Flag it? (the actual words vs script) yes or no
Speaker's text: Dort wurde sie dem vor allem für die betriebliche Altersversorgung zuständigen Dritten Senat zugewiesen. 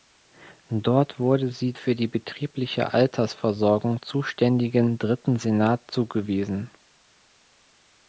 yes